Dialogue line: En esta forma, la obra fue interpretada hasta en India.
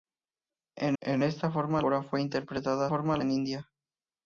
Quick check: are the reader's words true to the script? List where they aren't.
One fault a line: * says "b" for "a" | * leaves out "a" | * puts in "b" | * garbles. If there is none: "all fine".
* puts in "en"
* leaves out "la"
* says "forma" for "hasta"